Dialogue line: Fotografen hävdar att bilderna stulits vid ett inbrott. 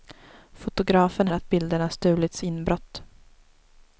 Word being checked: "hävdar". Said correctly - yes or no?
no